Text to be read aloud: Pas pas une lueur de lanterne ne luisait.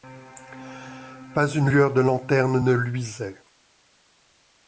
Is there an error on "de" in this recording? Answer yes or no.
no